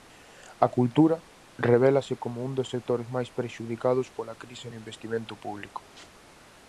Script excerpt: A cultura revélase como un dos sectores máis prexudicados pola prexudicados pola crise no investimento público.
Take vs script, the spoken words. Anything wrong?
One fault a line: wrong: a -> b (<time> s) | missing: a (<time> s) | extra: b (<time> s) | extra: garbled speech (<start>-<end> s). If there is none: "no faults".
missing: prexudicados pola (4.4 s)